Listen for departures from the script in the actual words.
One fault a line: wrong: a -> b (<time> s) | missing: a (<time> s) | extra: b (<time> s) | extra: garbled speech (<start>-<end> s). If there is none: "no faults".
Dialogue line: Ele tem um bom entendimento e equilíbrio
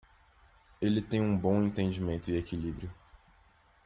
no faults